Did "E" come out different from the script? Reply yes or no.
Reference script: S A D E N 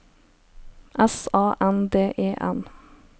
no